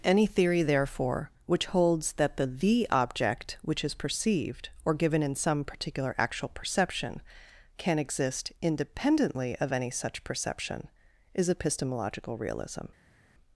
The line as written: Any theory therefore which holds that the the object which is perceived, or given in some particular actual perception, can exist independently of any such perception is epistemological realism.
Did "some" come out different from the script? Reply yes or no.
no